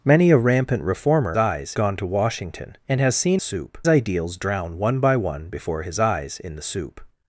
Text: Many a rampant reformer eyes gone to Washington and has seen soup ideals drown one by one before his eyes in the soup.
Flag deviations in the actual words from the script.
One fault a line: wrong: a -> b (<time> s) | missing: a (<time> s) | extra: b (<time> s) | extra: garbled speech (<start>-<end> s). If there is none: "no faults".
no faults